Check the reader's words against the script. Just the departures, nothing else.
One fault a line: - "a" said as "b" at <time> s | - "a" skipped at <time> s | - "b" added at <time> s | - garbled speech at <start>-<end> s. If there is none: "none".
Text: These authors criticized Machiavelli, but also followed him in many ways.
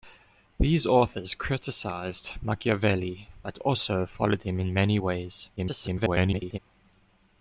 - garbled speech at 5.6-6.6 s